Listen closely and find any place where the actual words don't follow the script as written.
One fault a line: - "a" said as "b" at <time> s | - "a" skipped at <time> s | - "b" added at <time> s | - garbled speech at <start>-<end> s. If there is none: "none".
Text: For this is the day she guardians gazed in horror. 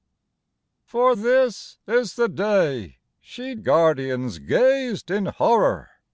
none